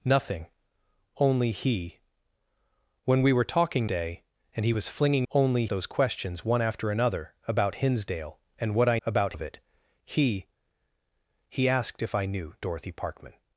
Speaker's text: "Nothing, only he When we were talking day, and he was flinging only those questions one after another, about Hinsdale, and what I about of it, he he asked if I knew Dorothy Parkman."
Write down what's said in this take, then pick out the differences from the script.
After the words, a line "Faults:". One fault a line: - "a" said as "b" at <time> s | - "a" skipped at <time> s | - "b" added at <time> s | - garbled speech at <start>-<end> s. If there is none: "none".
"Nothing, only he When we were talking day, and he was flinging only those questions one after another, about Hinsdale, and what I about of it, he he asked if I knew Dorothy Parkman."
Faults:
none